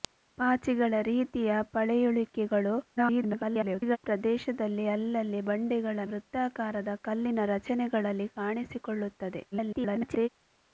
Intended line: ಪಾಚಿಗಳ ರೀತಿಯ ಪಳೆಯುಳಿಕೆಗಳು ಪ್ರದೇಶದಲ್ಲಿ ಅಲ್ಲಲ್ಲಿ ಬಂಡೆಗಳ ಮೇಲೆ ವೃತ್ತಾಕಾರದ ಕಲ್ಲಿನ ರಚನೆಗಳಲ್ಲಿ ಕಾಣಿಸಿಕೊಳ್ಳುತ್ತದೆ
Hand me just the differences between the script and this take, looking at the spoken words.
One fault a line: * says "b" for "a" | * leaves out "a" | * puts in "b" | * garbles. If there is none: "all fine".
* garbles
* leaves out "ಮೇಲೆ"
* garbles